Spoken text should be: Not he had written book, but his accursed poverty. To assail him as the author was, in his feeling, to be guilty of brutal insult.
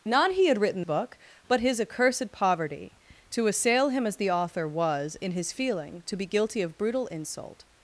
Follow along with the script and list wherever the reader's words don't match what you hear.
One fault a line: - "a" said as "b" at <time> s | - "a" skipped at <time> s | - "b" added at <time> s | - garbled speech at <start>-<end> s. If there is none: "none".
none